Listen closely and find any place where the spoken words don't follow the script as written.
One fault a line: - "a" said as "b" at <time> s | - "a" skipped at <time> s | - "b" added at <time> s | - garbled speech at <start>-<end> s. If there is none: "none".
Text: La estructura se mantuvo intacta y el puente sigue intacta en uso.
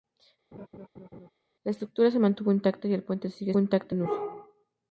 none